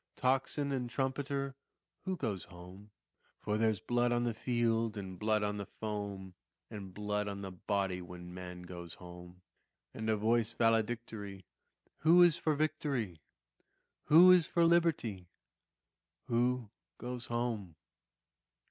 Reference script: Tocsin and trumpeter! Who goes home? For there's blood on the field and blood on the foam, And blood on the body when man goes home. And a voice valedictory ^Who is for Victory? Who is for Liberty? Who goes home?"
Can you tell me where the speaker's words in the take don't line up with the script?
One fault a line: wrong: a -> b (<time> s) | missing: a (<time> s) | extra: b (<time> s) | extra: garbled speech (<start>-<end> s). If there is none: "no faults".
no faults